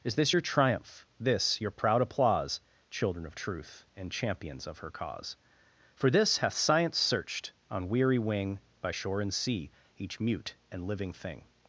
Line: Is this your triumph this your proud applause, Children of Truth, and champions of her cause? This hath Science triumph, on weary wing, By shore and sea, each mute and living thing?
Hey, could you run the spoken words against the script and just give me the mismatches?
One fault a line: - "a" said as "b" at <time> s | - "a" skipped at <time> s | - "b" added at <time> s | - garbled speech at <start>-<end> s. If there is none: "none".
- "For" added at 5.9 s
- "triumph" said as "searched" at 7.0 s